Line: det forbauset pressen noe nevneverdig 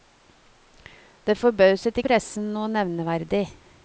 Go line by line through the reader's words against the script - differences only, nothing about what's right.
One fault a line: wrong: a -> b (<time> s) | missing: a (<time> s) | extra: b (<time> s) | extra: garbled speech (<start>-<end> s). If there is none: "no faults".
no faults